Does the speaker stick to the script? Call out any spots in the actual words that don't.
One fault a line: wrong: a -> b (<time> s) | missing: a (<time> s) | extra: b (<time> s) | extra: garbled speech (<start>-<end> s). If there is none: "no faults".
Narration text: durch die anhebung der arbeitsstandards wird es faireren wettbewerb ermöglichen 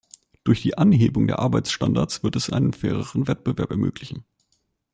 extra: einen (2.5 s)